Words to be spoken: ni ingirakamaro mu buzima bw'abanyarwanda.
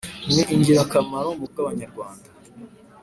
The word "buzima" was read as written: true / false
false